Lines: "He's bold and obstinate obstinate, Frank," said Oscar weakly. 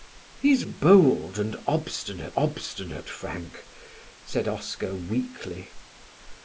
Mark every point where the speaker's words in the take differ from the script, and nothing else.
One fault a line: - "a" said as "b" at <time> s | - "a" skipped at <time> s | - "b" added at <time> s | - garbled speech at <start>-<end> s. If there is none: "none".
none